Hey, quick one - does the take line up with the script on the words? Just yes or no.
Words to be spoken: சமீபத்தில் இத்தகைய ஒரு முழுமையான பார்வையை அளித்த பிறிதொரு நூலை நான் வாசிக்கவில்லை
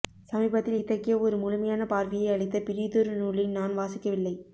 yes